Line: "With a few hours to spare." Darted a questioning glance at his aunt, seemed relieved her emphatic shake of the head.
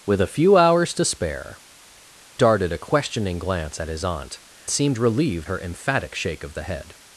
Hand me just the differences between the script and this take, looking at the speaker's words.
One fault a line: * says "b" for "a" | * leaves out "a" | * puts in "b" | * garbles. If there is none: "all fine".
all fine